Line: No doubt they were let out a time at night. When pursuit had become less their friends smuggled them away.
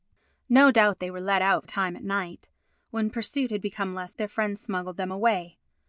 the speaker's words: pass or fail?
pass